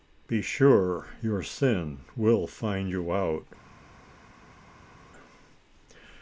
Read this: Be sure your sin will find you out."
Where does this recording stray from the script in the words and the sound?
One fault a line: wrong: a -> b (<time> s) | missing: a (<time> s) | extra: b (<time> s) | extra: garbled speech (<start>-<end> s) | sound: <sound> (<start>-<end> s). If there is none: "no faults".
no faults